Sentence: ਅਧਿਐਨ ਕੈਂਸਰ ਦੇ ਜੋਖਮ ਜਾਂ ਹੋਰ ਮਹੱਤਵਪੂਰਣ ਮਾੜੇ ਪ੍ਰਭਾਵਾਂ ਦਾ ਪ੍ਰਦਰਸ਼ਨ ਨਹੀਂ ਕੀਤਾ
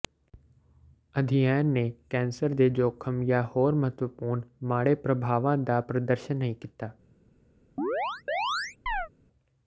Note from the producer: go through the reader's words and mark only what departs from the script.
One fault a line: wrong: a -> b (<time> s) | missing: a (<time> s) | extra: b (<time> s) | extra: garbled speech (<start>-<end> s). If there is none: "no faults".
extra: ਨੇ (1.7 s)